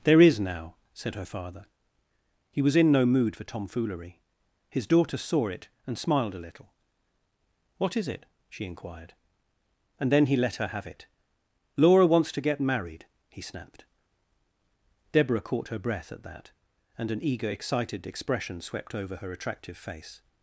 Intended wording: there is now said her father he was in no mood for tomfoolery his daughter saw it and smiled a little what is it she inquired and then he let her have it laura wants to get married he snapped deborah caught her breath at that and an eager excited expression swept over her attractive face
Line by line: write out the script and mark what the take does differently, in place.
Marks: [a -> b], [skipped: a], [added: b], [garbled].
there is now said her father he was in no mood for tomfoolery his daughter saw it and smiled a little what is it she inquired and then he let her have it laura wants to get married he snapped deborah caught her breath at that and an eager excited expression swept over her attractive face